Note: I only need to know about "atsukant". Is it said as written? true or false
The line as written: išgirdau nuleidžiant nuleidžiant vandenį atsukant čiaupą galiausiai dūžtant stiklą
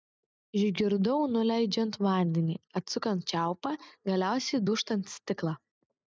true